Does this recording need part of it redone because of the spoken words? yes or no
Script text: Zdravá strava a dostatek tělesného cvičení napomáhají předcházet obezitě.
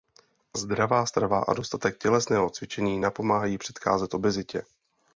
no